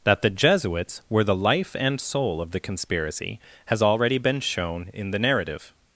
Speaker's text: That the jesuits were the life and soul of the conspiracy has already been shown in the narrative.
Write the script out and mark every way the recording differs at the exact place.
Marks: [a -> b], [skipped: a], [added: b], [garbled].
That the jesuits were the life and soul of the conspiracy has already been shown in the narrative.